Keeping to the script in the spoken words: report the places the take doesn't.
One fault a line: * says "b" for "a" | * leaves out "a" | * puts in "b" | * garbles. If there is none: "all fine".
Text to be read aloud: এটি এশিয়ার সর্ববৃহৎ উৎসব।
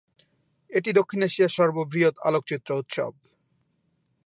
* puts in "দক্ষিণ"
* puts in "আলোকচিত্র"